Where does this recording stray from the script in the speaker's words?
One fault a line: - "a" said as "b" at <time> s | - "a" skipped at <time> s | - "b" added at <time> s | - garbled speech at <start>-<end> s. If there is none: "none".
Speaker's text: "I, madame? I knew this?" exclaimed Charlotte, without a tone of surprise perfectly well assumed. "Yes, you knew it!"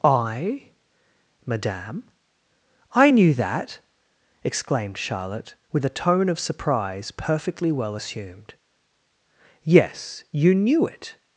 - "this" said as "that" at 3.3 s
- "without" said as "with" at 5.7 s